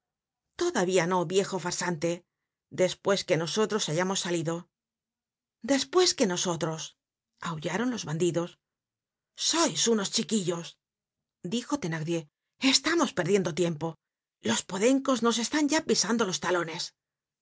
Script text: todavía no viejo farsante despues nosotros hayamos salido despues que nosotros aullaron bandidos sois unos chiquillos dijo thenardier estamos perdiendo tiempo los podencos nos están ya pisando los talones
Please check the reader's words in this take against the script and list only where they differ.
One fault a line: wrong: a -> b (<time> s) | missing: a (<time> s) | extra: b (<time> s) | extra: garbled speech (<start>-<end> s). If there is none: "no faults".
extra: que (3.3 s)
extra: los (7.9 s)